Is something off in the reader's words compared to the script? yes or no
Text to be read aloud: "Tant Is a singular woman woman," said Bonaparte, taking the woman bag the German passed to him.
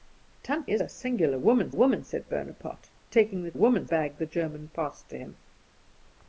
no